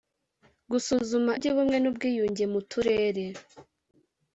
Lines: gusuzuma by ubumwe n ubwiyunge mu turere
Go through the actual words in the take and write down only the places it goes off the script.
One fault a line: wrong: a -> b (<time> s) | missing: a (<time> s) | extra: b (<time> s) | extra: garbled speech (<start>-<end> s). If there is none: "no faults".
no faults